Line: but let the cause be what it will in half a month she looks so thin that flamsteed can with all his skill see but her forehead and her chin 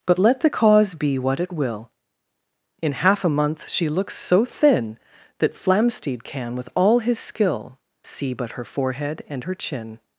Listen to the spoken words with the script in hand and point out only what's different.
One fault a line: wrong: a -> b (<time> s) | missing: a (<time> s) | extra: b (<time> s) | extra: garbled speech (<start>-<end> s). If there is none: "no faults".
no faults